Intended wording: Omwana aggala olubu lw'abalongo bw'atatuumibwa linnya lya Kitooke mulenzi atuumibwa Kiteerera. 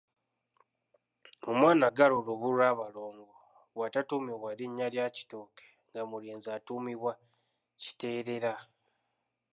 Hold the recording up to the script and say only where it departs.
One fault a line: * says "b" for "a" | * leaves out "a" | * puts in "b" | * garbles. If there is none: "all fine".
* puts in "nga"